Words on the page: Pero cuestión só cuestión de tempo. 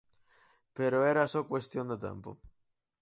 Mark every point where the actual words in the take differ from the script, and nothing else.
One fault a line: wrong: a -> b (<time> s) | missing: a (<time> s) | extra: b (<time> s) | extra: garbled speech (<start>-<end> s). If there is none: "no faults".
wrong: cuestión -> era (1.1 s)